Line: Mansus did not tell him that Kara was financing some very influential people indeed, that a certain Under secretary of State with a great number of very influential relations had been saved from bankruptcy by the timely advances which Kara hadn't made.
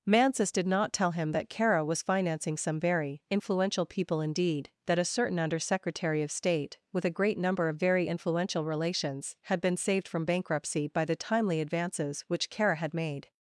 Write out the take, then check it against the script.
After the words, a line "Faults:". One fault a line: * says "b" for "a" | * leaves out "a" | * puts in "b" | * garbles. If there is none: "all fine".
Mansus did not tell him that Kara was financing some very influential people indeed, that a certain Under secretary of State with a great number of very influential relations had been saved from bankruptcy by the timely advances which Kara had made.
Faults:
* says "had" for "hadn't"